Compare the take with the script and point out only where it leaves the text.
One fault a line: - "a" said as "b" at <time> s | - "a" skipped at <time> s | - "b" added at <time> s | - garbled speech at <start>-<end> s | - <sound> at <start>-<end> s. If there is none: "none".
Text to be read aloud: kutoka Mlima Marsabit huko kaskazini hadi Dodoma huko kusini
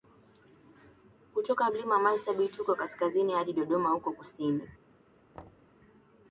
- thud at 5.3-5.7 s